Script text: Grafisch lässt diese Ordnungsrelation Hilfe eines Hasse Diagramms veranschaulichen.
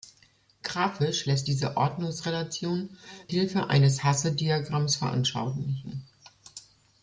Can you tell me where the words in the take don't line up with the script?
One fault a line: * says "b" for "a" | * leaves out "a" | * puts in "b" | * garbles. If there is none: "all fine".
all fine